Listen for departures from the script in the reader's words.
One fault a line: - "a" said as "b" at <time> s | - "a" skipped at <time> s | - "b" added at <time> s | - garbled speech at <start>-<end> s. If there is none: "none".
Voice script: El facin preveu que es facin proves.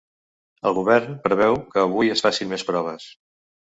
- "facin" said as "govern" at 0.8 s
- "avui" added at 1.9 s
- "més" added at 2.6 s